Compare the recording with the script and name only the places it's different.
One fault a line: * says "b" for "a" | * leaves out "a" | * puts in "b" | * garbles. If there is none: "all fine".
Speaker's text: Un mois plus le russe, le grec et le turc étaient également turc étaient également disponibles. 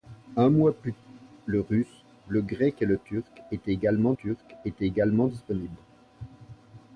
all fine